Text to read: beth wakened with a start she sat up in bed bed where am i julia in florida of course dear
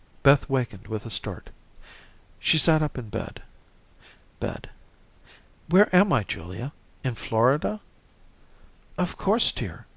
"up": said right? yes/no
yes